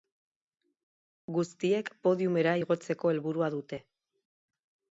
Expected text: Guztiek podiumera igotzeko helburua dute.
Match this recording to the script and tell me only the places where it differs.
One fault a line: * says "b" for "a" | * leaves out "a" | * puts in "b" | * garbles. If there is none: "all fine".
all fine